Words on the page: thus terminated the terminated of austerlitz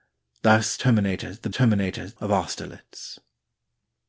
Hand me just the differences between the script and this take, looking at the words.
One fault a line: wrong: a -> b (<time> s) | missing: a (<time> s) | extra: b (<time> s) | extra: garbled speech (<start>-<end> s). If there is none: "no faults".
no faults